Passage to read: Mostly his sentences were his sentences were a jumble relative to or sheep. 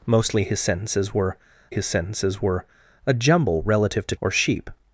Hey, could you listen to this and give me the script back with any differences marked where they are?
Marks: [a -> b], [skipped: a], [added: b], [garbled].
Mostly his sentences were his sentences were a jumble relative to or sheep.